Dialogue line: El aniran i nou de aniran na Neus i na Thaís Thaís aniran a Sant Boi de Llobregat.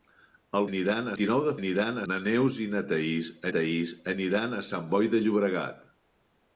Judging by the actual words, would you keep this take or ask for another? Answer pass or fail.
pass